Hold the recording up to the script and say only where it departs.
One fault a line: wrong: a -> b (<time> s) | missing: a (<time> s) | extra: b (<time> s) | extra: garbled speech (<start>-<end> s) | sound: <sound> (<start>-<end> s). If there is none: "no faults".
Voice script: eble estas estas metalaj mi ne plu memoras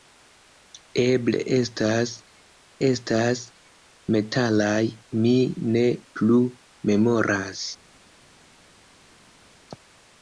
no faults